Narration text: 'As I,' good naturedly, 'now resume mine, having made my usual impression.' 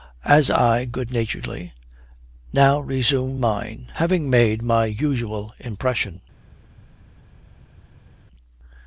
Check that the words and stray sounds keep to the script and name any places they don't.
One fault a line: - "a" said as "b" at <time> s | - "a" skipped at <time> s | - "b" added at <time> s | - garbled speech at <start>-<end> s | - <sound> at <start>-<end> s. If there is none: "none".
none